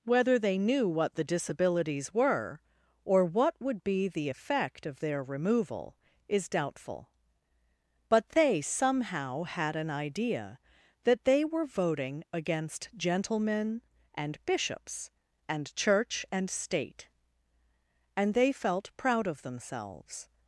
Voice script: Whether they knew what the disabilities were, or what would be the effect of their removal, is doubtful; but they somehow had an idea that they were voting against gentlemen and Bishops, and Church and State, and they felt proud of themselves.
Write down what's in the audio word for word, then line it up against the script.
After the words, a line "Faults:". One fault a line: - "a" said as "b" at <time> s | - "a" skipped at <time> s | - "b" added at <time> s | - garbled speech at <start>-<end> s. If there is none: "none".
Whether they knew what the disabilities were, or what would be the effect of their removal, is doubtful; but they somehow had an idea that they were voting against gentlemen and Bishops, and Church and State, and they felt proud of themselves.
Faults:
none